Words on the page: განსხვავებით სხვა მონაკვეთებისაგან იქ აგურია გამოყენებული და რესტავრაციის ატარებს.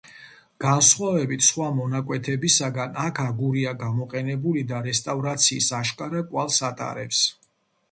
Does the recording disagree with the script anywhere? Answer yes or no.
yes